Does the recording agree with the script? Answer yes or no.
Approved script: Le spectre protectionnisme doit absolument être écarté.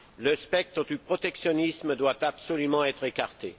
no